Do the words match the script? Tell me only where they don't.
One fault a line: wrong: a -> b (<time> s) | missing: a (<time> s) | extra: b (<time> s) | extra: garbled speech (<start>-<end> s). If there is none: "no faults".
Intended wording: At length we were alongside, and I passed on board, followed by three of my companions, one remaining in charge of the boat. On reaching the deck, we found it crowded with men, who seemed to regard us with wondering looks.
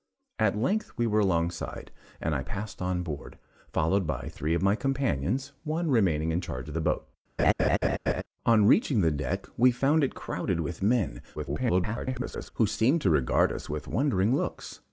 extra: garbled speech (11.4-12.5 s)